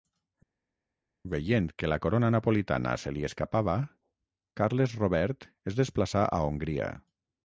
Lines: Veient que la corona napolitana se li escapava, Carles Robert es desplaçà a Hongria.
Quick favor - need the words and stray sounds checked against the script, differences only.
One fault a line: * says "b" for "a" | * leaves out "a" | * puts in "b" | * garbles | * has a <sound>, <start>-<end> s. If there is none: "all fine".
all fine